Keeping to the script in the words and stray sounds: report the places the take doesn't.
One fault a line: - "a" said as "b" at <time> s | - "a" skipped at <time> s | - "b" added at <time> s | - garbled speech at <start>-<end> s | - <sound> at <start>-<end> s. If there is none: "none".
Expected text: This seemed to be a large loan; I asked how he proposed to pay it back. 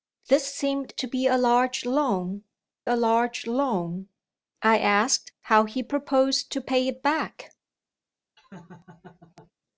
- "a large loan" added at 2.8 s
- laugh at 8.4-9.5 s